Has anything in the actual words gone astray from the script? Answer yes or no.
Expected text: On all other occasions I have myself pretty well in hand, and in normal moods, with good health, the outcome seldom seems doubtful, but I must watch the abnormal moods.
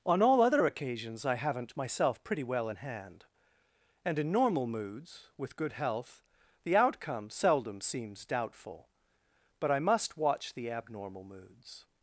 yes